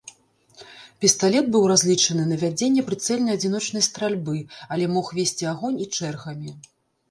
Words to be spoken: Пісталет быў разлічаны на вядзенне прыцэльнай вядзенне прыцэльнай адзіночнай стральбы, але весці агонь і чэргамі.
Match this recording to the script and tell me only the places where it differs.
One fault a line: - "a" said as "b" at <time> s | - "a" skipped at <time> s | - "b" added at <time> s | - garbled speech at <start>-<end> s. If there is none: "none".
- "вядзенне прыцэльнай" skipped at 3.3 s
- "мог" added at 5.0 s